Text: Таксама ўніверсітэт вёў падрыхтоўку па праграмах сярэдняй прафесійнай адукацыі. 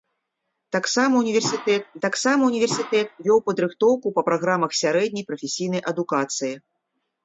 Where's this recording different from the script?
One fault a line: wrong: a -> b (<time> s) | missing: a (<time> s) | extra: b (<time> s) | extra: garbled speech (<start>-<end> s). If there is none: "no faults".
extra: таксама ўніверсітэт (2.0 s)